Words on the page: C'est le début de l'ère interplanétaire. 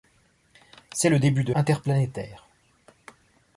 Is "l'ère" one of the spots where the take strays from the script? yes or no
yes